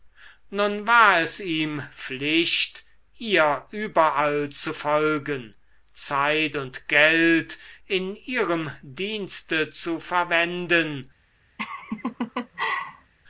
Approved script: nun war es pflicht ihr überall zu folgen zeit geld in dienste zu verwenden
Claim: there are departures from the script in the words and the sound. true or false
true